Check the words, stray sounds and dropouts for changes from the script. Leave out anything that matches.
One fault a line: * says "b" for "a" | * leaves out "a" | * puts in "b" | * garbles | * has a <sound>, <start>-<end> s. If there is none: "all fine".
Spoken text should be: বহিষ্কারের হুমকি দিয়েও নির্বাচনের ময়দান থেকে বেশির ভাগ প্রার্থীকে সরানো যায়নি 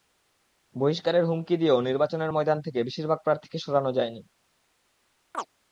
* has a chirp, 5.3-5.5 s